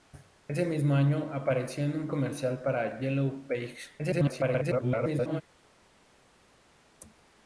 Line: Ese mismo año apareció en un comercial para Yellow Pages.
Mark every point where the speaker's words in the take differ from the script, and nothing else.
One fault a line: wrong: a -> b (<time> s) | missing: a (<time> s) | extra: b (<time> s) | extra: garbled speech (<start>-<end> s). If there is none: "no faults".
extra: garbled speech (4.0-5.4 s)